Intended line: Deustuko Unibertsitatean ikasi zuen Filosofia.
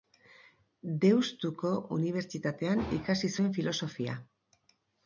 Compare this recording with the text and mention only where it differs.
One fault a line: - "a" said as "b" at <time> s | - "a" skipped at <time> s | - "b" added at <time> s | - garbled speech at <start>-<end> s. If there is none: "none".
none